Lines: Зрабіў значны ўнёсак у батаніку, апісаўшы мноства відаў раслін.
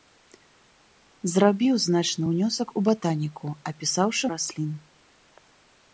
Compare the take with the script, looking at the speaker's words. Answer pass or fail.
fail